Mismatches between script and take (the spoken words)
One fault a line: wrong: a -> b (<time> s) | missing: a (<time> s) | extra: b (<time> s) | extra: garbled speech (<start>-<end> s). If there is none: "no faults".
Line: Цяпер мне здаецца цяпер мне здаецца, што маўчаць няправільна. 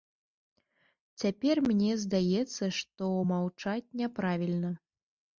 missing: цяпер мне здаецца (2.7 s)